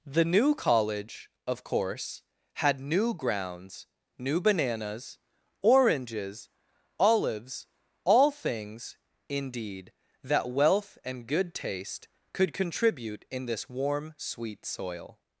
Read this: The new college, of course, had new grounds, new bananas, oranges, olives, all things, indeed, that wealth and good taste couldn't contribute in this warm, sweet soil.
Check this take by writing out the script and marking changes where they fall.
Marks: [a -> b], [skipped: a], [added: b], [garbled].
The new college, of course, had new grounds, new bananas, oranges, olives, all things, indeed, that wealth and good taste [couldn't -> could] contribute in this warm, sweet soil.